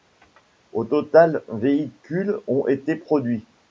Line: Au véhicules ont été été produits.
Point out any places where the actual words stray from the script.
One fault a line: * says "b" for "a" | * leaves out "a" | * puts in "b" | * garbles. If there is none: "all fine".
* puts in "total"
* leaves out "été"